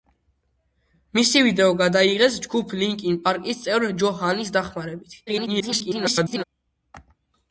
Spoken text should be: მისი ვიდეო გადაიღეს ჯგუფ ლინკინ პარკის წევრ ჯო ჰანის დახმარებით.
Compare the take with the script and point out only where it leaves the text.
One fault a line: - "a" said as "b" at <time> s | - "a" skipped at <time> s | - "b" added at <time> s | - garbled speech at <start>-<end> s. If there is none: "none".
- garbled speech at 5.3-6.4 s